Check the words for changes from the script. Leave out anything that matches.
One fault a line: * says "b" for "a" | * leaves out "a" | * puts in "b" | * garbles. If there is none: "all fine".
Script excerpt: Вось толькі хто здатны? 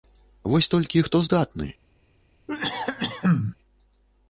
all fine